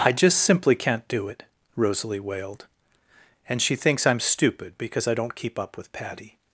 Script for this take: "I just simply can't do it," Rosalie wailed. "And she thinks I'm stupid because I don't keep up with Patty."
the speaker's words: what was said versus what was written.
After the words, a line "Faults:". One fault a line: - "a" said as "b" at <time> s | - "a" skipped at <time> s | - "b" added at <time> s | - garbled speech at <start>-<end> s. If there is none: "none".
"I just simply can't do it," Rosalie wailed. "And she thinks I'm stupid because I don't keep up with Patty."
Faults:
none